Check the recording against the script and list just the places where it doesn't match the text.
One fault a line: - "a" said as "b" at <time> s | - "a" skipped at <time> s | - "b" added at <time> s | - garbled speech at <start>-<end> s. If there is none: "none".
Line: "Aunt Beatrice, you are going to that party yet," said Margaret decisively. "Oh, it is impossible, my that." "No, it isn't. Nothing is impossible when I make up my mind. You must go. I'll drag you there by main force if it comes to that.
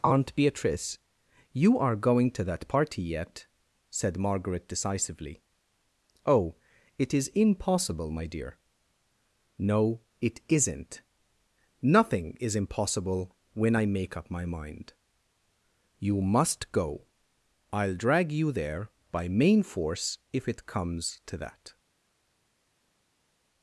- "that" said as "dear" at 8.2 s